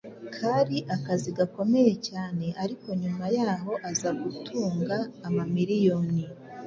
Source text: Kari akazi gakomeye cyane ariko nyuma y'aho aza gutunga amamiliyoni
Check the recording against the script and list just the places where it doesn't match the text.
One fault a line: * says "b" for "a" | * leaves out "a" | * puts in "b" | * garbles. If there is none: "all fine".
all fine